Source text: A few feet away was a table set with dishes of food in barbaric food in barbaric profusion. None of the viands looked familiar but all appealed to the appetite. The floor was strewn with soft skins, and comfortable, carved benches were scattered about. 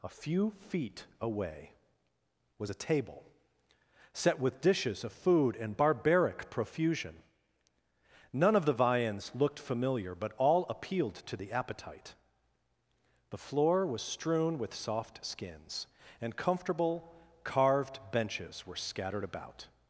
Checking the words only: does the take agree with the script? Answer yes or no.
no